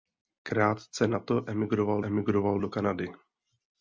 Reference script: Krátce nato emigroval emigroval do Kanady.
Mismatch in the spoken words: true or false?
false